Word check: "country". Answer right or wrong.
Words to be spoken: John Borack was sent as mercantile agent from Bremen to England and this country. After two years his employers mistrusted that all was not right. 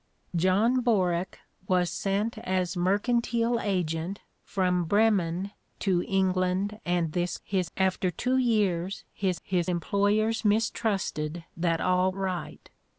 wrong